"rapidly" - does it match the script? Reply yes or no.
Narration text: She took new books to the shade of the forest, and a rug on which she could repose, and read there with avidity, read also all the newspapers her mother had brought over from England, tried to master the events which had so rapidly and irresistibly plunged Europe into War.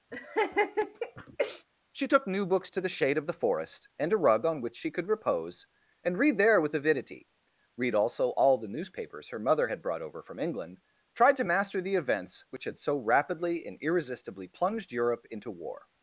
yes